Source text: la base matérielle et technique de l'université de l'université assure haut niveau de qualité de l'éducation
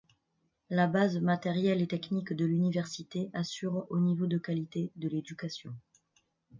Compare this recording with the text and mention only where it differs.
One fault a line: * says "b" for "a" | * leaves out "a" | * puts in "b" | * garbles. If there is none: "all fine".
* leaves out "de l'université"